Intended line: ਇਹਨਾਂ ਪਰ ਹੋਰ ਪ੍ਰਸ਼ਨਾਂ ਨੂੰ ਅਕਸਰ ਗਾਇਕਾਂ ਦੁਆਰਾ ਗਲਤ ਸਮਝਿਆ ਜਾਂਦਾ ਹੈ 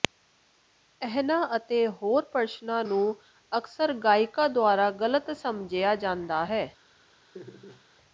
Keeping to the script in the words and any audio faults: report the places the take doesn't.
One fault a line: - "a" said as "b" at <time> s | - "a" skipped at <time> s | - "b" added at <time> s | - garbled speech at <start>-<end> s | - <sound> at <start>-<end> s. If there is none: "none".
- "ਪਰ" said as "ਅਤੇ" at 1.6 s
- laugh at 7.3-7.8 s